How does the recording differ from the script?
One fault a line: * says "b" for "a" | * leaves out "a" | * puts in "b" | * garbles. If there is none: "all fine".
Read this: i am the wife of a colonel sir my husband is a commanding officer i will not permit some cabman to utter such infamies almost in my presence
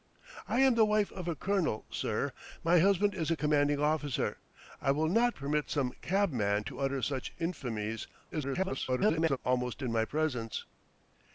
* garbles